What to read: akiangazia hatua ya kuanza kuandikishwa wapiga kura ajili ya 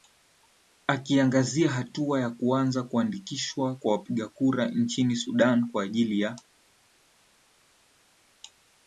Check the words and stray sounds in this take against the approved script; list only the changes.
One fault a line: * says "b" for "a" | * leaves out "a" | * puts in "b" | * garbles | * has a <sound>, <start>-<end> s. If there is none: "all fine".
* puts in "kwa"
* puts in "nchini sudan kwa"